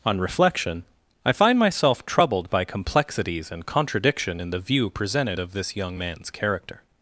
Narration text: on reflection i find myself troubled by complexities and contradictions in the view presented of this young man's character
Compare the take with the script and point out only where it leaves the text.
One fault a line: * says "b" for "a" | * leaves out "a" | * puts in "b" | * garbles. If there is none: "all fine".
* says "contradiction" for "contradictions"